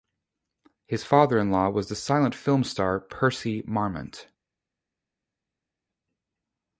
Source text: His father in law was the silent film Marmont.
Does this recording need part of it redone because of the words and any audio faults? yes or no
yes